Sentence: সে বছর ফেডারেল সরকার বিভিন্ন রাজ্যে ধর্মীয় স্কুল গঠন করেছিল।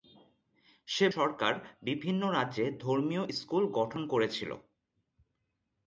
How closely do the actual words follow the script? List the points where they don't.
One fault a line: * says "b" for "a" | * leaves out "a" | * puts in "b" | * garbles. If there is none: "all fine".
* leaves out "বছর ফেডারেল"